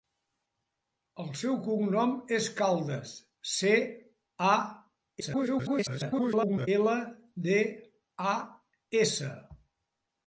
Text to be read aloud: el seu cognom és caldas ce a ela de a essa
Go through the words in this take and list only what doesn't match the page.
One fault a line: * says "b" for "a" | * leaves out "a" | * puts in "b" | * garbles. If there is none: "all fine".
* garbles